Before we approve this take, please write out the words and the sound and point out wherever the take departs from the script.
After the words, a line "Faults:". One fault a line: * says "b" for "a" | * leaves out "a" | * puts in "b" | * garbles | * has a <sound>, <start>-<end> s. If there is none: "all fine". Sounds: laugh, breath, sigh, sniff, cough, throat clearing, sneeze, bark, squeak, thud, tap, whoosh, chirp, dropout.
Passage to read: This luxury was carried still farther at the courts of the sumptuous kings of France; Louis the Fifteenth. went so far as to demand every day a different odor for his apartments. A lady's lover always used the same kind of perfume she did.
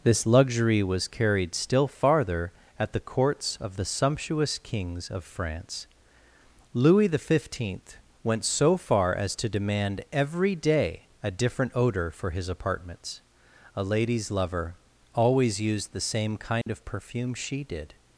This luxury was carried still farther at the courts of the sumptuous kings of France; Louis the Fifteenth. went so far as to demand every day a different odor for his apartments. A lady's lover always used the same kind of perfume she did.
Faults:
* has a dropout, 16.6-16.7 s